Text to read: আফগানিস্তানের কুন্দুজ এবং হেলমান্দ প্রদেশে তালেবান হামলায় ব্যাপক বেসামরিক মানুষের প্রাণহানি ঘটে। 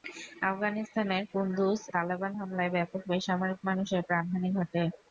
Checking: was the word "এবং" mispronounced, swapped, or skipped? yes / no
yes